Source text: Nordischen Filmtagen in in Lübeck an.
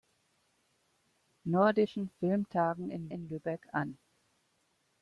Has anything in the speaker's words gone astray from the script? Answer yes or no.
no